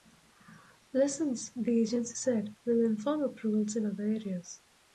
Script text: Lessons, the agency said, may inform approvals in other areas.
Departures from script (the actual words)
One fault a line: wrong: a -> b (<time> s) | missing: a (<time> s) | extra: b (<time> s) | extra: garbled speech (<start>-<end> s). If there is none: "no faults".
wrong: may -> will (2.6 s)